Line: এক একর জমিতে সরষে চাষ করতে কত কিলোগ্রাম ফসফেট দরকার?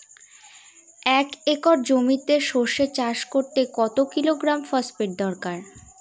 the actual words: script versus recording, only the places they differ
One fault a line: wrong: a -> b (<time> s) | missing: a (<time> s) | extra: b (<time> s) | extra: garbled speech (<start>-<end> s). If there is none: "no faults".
no faults